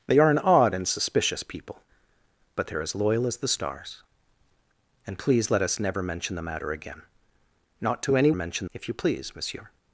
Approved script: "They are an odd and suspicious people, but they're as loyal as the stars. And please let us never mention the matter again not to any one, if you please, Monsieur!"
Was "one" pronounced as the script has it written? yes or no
no